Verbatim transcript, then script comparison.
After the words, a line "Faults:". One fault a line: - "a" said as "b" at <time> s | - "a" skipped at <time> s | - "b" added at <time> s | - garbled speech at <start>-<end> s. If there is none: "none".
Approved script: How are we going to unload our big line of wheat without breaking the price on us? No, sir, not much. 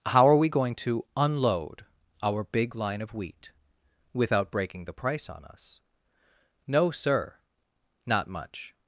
How are we going to unload our big line of wheat without breaking the price on us? No, sir, not much.
Faults:
none